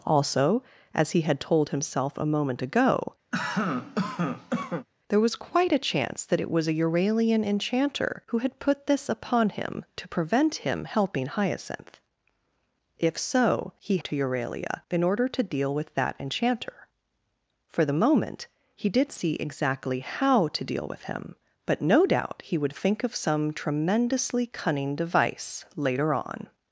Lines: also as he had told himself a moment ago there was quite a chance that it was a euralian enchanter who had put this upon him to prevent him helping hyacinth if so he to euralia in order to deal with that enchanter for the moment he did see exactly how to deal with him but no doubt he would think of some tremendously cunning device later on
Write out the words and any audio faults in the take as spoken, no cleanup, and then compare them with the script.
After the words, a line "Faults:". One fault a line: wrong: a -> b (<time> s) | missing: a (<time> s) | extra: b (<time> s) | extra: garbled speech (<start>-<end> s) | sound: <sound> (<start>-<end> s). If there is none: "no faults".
also as he had told himself a moment ago there was quite a chance that it was a euralian enchanter who had put this upon him to prevent him helping hyacinth if so he to euralia in order to deal with that enchanter for the moment he did see exactly how to deal with him but no doubt he would think of some tremendously cunning device later on
Faults:
sound: cough (3.3-4.9 s)